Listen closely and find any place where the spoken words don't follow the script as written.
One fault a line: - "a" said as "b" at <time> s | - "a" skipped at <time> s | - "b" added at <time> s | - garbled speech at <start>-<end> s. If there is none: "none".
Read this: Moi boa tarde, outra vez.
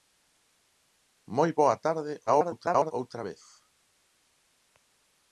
- garbled speech at 2.3-2.9 s